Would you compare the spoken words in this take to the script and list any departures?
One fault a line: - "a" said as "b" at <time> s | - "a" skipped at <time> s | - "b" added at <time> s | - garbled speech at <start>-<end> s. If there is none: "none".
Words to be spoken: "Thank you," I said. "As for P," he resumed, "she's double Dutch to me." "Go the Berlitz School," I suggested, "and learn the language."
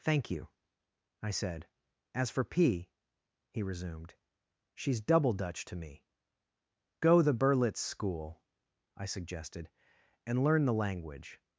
none